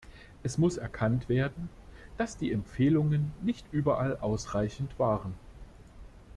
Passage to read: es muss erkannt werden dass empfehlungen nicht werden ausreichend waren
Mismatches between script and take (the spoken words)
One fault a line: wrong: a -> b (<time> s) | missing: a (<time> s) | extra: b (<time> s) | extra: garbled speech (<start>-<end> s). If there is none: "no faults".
extra: die (2.4 s)
wrong: werden -> überall (3.7 s)